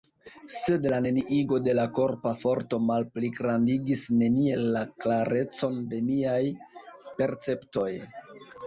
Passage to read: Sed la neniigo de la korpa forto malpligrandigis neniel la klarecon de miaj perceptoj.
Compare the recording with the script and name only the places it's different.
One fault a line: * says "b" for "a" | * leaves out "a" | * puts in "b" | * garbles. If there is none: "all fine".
all fine